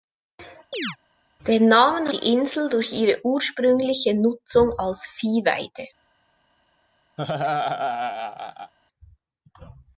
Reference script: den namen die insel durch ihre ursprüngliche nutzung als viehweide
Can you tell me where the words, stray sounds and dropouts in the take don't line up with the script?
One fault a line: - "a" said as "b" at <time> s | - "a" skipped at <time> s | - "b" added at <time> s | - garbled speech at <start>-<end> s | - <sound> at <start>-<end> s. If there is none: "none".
- chirp at 0.7-1.0 s
- laugh at 7.2-8.7 s